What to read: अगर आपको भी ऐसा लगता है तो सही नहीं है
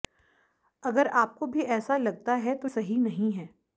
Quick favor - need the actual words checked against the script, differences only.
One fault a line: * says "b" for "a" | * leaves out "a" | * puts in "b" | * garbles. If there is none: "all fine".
all fine